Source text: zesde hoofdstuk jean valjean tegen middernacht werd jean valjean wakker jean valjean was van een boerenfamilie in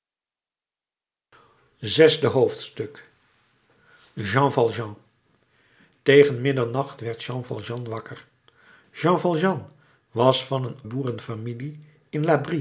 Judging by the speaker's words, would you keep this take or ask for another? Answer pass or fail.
pass